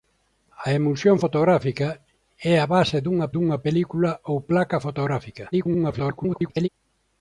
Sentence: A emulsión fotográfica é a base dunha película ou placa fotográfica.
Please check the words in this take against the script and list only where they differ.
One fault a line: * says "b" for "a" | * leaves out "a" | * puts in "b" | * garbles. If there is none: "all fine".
* puts in "dunha"
* garbles